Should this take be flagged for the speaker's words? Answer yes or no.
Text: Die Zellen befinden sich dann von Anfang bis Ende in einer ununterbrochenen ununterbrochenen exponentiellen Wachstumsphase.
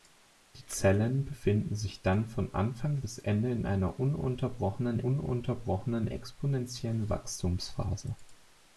no